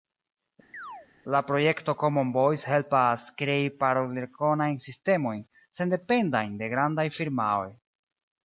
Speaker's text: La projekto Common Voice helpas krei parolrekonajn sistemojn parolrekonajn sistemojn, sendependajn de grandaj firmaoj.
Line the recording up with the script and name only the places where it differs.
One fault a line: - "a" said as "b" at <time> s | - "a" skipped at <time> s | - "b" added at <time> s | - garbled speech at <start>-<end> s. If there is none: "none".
- "parolrekonajn sistemojn" skipped at 5.4 s